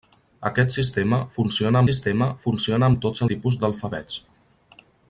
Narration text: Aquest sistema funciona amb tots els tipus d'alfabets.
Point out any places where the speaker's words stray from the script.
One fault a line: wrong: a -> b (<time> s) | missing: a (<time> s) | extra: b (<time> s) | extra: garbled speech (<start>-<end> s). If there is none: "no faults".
extra: sistema funciona (1.9 s)
missing: els (3.2 s)